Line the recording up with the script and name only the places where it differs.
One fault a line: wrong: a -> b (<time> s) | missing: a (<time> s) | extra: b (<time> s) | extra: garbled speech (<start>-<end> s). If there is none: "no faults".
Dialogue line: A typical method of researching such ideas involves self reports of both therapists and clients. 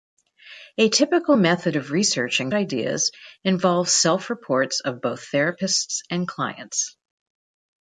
missing: such (2.5 s)